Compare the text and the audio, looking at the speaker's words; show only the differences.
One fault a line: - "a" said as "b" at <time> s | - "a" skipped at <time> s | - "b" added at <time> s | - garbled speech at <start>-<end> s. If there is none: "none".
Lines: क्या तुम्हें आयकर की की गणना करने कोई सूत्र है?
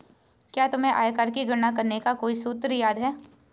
- "की" skipped at 1.4 s
- "का" added at 2.0 s
- "याद" added at 2.7 s